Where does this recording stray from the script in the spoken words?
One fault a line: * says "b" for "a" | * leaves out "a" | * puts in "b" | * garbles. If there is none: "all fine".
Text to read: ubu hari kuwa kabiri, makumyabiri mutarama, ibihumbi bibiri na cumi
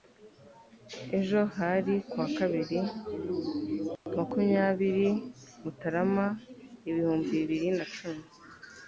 * says "ejo" for "ubu"